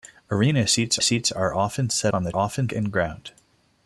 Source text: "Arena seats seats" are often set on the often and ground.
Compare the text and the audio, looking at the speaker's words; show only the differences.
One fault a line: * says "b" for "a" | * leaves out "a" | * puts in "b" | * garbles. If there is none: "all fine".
all fine